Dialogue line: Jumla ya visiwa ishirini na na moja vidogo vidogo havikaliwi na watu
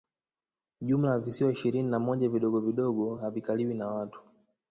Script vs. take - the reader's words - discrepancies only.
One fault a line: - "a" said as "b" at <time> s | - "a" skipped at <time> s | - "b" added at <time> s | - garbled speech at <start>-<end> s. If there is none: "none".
- "na" skipped at 2.0 s